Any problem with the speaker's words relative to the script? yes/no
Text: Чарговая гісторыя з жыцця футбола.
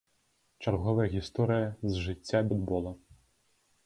no